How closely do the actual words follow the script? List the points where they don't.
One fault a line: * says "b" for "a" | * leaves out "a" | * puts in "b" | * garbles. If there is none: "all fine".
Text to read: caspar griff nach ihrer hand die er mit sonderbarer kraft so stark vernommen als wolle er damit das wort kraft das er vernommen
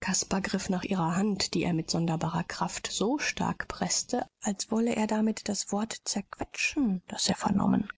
* says "preßte" for "vernommen"
* says "zerquetschen" for "kraft"